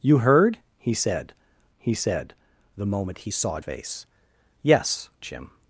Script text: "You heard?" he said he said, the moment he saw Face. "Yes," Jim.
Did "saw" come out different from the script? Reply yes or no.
no